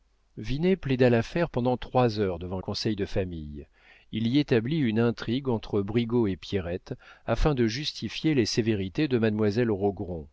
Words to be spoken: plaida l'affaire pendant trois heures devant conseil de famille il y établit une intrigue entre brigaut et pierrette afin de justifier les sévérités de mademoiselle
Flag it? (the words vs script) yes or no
no